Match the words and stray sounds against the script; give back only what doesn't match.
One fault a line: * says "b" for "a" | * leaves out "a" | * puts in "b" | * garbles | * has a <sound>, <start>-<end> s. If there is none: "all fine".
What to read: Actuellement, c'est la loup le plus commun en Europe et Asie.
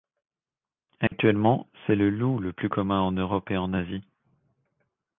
* has a dropout, 1.1-1.1 s
* says "le" for "la"
* puts in "en"